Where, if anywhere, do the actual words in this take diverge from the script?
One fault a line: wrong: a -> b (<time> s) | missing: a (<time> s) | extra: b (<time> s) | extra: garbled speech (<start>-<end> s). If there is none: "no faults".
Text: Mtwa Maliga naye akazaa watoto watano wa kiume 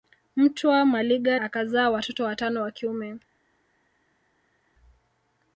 missing: naye (1.4 s)